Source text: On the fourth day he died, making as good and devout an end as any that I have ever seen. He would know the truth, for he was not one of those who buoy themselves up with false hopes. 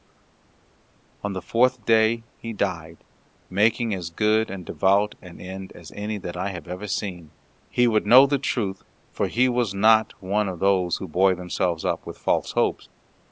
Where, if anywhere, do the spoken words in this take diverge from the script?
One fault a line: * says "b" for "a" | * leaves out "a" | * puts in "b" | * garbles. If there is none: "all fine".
all fine